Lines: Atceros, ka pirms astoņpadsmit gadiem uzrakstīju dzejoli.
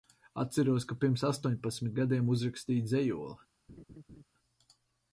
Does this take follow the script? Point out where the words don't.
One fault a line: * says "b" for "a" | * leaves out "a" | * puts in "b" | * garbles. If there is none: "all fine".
all fine